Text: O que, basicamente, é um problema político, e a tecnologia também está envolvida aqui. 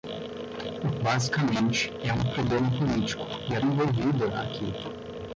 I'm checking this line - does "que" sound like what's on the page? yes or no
no